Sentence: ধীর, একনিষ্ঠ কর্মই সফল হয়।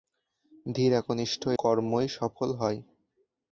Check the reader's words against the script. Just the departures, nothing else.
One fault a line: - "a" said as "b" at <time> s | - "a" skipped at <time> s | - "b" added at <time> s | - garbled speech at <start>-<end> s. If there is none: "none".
none